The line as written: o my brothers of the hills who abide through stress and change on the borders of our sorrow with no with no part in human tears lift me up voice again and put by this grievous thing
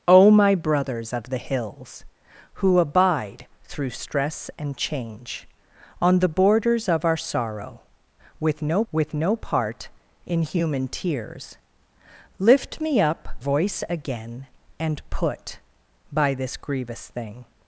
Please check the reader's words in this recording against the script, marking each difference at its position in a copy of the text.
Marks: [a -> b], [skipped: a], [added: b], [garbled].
o my brothers of the hills who abide through stress and change on the borders of our sorrow with no with no part in human tears lift me up voice again and put by this grievous thing